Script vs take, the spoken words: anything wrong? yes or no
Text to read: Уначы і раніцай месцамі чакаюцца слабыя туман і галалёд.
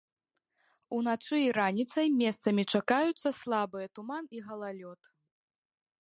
no